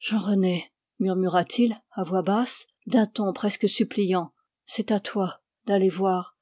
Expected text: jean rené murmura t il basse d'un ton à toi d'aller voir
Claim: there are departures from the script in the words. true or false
true